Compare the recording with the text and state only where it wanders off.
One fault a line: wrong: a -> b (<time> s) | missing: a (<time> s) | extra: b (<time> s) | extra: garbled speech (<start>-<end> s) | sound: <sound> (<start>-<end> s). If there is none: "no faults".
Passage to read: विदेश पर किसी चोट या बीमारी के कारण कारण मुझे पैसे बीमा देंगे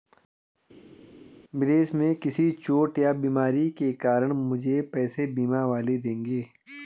wrong: पर -> में (1.9 s)
missing: कारण (4.3 s)
extra: वाले (5.7 s)